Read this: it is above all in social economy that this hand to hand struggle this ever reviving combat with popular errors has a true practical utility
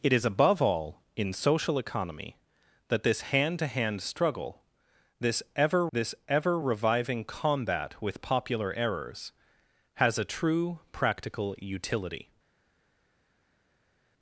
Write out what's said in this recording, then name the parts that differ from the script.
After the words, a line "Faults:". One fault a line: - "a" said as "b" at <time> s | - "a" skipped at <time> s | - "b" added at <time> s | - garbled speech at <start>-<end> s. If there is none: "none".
it is above all in social economy that this hand to hand struggle this ever this ever reviving combat with popular errors has a true practical utility
Faults:
- "this ever" added at 5.9 s